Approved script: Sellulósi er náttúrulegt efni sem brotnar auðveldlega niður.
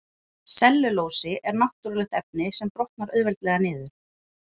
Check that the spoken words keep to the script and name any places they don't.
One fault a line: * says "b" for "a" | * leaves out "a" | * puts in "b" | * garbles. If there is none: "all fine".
all fine